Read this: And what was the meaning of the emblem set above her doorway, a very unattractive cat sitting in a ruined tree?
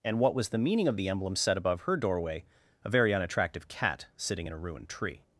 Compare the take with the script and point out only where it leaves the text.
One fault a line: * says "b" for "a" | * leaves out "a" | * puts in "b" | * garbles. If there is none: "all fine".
all fine